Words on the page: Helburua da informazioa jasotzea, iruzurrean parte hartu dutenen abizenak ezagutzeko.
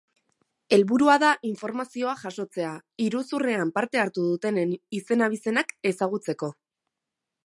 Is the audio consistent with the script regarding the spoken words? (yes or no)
no